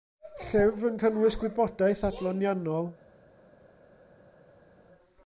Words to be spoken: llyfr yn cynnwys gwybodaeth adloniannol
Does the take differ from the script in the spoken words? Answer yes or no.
no